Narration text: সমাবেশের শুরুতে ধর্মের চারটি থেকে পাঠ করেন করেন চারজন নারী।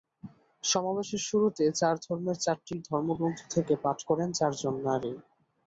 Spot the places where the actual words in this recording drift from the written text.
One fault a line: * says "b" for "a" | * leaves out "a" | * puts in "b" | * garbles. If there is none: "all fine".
* puts in "চার"
* puts in "ধর্মগ্রন্থ"
* leaves out "করেন"